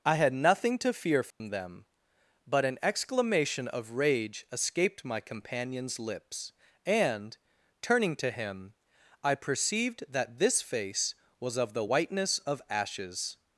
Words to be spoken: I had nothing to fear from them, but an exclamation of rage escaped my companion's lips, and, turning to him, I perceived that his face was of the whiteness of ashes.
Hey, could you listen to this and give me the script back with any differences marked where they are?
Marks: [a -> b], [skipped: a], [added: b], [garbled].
I had nothing to fear from them, but an exclamation of rage escaped my companion's lips, and, turning to him, I perceived that [his -> this] face was of the whiteness of ashes.